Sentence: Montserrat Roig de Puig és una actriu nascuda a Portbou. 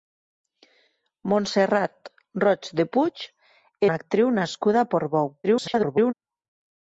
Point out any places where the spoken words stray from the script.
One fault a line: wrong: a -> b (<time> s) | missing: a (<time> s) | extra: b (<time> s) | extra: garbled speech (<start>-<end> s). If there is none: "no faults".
missing: és (3.3 s)
extra: garbled speech (5.4-6.1 s)